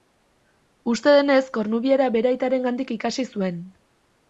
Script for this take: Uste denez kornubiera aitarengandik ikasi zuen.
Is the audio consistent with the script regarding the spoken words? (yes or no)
no